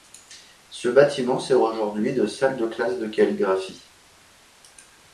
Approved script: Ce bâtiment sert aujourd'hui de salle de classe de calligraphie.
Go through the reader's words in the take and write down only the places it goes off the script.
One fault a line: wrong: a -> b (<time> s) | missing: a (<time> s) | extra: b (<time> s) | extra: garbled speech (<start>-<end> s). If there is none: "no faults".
no faults